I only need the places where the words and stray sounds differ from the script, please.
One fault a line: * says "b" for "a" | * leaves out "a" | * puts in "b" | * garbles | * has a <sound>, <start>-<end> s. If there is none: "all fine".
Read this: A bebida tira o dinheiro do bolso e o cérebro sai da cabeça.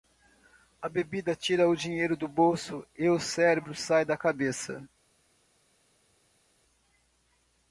all fine